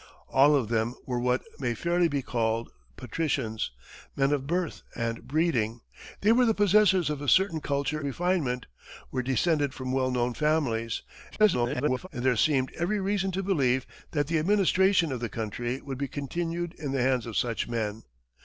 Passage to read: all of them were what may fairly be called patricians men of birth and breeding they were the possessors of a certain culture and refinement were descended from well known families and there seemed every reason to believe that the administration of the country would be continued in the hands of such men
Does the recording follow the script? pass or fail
fail